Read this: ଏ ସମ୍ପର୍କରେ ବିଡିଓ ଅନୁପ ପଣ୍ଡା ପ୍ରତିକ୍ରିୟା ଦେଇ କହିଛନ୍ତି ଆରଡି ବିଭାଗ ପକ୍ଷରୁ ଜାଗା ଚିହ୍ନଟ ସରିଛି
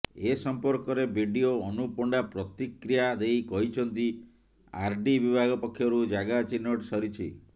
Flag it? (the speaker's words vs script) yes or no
no